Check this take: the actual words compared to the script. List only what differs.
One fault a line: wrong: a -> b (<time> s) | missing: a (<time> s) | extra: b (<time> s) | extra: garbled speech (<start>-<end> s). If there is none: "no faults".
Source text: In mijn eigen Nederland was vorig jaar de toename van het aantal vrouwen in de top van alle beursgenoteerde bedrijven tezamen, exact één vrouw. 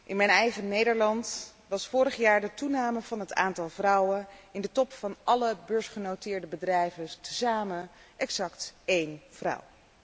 no faults